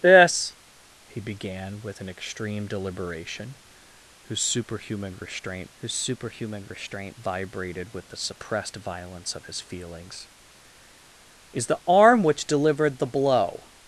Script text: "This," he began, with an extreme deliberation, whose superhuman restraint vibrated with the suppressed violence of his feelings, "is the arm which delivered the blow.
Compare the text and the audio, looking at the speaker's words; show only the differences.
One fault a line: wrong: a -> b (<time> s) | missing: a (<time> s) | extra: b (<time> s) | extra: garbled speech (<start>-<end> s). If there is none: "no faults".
extra: whose superhuman restraint (5.8 s)